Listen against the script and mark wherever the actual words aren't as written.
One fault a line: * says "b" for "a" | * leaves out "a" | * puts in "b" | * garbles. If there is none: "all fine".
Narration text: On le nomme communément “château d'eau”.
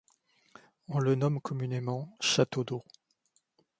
all fine